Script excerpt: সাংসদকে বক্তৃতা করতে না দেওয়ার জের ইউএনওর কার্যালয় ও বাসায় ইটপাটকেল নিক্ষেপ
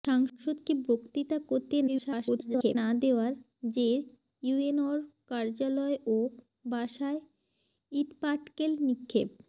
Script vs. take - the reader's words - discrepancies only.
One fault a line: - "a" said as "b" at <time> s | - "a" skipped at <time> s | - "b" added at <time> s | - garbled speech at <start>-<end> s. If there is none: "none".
- garbled speech at 1.9-2.8 s